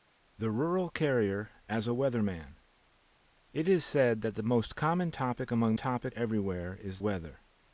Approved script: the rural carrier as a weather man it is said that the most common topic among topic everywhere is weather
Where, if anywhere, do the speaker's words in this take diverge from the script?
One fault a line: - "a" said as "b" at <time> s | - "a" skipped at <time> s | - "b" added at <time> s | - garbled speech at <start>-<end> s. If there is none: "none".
none